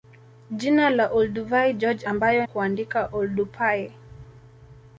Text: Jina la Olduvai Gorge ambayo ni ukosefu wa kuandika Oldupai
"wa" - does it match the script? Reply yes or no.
no